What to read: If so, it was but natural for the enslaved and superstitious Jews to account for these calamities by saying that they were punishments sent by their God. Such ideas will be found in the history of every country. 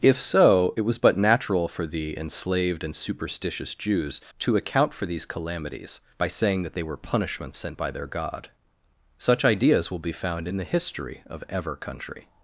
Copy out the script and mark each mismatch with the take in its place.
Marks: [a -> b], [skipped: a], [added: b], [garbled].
If so, it was but natural for the enslaved and superstitious Jews to account for these calamities by saying that they were punishments sent by their God. Such ideas will be found in the history of [every -> ever] country.